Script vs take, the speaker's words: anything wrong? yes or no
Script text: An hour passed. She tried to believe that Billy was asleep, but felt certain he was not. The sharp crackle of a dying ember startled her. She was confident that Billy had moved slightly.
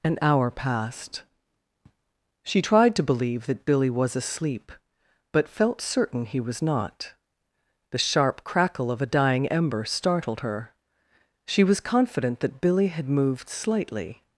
no